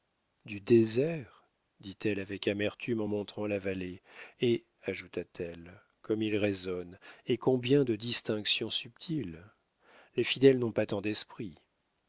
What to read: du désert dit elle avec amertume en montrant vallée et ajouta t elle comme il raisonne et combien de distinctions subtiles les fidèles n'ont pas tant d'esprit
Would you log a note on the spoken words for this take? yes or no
yes